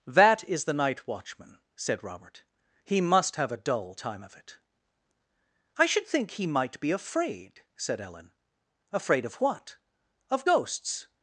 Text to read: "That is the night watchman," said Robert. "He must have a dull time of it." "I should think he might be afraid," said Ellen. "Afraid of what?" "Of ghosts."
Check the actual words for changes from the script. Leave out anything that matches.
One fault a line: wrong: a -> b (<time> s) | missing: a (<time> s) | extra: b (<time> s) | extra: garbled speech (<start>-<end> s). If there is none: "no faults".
no faults